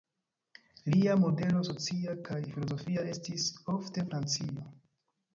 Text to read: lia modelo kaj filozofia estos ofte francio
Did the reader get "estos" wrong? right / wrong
wrong